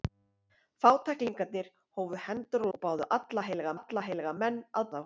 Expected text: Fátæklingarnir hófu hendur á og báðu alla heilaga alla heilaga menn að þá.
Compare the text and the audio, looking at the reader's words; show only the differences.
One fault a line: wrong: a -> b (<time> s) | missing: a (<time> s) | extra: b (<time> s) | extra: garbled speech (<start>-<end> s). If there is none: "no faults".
no faults